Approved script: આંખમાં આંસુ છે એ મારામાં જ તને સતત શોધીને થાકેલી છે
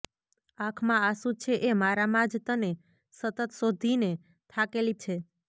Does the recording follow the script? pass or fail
pass